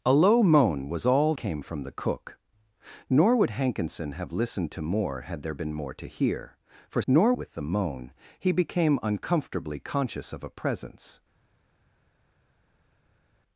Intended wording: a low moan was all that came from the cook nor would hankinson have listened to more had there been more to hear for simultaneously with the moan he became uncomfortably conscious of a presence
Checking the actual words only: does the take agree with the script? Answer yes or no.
no